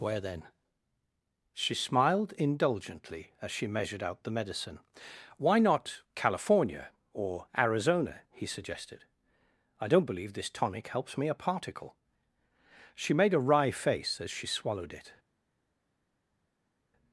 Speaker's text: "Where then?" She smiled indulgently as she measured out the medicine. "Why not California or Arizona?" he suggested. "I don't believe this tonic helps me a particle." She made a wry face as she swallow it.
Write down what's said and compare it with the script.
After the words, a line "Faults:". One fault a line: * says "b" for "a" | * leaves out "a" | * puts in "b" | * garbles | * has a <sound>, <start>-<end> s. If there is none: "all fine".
"Where then?" She smiled indulgently as she measured out the medicine. "Why not California or Arizona?" he suggested. "I don't believe this tonic helps me a particle." She made a wry face as she swallowed it.
Faults:
* says "swallowed" for "swallow"